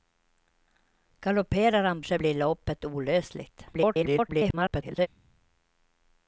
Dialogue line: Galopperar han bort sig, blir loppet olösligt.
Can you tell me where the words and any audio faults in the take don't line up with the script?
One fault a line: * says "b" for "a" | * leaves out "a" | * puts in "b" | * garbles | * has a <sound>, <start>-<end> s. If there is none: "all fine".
* leaves out "bort"
* garbles